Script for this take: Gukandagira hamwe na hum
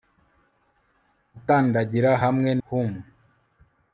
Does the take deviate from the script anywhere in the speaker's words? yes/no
yes